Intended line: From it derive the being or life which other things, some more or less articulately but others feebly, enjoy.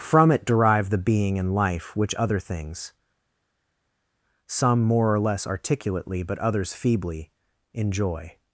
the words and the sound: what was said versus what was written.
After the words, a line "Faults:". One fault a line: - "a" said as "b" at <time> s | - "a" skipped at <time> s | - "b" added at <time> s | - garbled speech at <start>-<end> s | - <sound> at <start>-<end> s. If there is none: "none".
From it derive the being and life which other things, some more or less articulately but others feebly, enjoy.
Faults:
- "or" said as "and" at 1.4 s